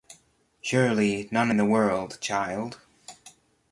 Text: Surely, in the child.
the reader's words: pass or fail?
fail